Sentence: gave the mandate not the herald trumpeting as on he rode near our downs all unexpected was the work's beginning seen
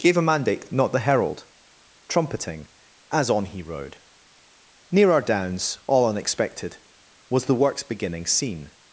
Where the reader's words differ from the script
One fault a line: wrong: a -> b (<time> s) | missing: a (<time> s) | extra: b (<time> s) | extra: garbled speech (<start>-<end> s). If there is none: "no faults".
wrong: the -> a (0.2 s)